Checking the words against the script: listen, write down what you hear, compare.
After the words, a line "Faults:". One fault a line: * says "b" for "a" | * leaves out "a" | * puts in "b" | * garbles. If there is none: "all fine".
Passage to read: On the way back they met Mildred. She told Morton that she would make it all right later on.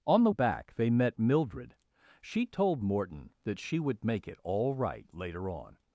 On the back they met Mildred. She told Morton that she would make it all right later on.
Faults:
* leaves out "way"